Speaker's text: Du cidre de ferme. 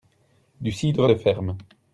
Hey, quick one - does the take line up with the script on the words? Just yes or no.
yes